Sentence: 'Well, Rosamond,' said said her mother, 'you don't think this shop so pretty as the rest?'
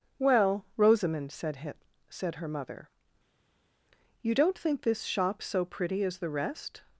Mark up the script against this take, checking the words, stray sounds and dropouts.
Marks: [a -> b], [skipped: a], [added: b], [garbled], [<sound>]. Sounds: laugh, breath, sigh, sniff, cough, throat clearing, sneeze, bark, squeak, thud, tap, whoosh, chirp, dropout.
'Well, Rosamond,' said said her mother, 'you don't think this shop so pretty as the rest?'